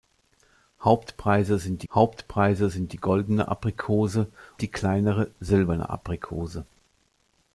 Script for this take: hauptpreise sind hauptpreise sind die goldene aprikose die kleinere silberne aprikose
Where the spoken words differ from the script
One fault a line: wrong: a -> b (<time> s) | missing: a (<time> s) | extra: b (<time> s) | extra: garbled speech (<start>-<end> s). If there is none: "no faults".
no faults